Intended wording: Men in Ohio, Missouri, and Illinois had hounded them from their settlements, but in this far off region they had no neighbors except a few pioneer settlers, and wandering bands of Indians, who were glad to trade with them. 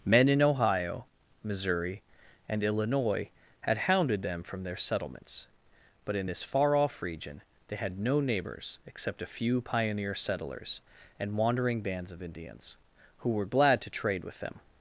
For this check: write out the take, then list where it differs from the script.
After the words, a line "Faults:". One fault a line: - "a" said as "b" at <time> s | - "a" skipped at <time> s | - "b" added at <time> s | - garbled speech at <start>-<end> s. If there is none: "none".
Men in Ohio, Missouri, and Illinois had hounded them from their settlements, but in this far off region they had no neighbors except a few pioneer settlers, and wandering bands of Indians, who were glad to trade with them.
Faults:
none